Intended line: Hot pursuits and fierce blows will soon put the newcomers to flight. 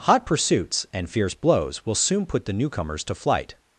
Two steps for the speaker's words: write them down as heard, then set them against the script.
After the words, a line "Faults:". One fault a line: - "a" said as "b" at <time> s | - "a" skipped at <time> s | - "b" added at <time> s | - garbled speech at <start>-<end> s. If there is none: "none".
Hot pursuits and fierce blows will soon put the newcomers to flight.
Faults:
none